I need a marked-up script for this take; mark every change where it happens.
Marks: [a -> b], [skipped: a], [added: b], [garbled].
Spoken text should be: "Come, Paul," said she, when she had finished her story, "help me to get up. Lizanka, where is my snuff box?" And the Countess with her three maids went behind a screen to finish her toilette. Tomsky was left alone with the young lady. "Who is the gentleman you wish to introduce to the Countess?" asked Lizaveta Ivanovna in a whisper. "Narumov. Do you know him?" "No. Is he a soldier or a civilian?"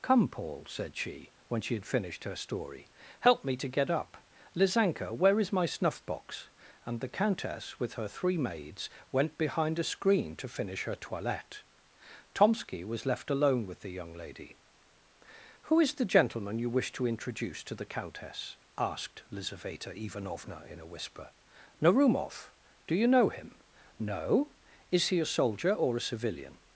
"Come, Paul," said she, when she had finished her story, "help me to get up. Lizanka, where is my snuff box?" And the Countess with her three maids went behind a screen to finish her toilette. Tomsky was left alone with the young lady. "Who is the gentleman you wish to introduce to the Countess?" asked Lizaveta Ivanovna in a whisper. "Narumov. Do you know him?" "No. Is he a soldier or a civilian?"